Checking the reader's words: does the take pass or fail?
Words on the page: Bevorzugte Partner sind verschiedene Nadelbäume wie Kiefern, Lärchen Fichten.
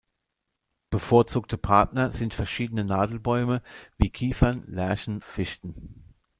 pass